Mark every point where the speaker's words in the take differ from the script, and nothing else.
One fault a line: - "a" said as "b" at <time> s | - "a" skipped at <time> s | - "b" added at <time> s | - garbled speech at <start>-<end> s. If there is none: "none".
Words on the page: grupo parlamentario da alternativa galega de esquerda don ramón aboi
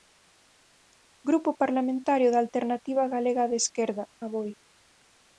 - "don ramón" skipped at 4.0 s